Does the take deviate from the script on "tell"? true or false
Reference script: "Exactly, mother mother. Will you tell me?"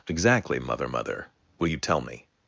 false